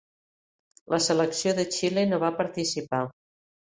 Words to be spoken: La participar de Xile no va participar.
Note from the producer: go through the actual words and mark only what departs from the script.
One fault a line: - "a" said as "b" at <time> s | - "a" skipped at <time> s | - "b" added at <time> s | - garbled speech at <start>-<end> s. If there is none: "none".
- "participar" said as "selecció" at 1.1 s